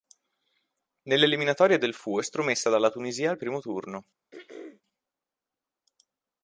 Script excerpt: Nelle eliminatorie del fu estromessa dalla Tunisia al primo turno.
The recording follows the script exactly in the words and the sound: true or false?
false